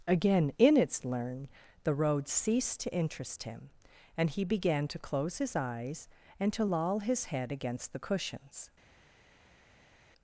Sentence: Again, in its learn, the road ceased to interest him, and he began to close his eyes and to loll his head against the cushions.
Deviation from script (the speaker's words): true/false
false